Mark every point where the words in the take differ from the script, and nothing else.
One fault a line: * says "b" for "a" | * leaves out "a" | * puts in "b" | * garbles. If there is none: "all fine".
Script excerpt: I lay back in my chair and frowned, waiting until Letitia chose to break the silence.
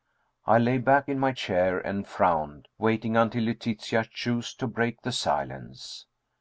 all fine